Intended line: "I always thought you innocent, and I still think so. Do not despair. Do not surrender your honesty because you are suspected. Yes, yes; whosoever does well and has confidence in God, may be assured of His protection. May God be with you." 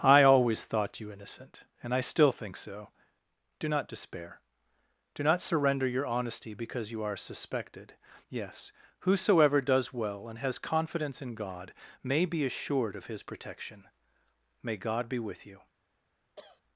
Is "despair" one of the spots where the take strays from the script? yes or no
no